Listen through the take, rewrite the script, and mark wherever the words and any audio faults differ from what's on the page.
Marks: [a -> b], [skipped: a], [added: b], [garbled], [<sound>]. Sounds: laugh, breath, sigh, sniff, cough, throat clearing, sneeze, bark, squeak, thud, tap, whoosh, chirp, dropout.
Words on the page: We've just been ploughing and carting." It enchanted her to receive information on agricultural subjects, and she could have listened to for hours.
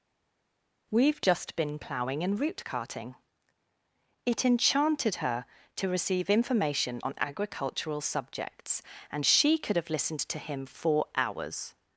We've just been ploughing and [added: root] carting." It enchanted her to receive information on agricultural subjects, and she could have listened to [added: him] for hours.